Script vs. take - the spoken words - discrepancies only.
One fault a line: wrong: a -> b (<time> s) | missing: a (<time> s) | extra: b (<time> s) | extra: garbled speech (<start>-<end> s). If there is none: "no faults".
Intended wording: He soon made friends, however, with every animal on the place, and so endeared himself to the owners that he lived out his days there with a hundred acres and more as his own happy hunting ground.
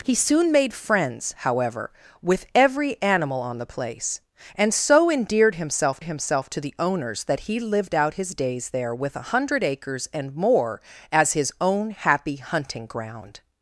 extra: himself (6.0 s)